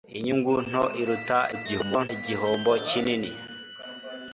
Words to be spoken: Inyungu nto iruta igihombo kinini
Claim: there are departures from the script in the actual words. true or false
true